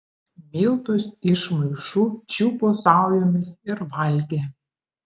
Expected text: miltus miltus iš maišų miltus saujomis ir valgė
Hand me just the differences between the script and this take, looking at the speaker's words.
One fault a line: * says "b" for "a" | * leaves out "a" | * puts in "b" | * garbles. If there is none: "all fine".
* leaves out "miltus"
* says "čiupo" for "miltus"